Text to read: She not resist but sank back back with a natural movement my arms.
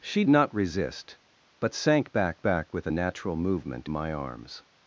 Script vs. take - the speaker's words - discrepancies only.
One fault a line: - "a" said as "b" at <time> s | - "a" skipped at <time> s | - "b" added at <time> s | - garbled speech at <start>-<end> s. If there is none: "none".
none